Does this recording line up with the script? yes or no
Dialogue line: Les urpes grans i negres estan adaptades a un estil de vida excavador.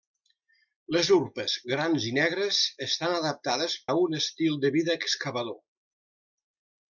yes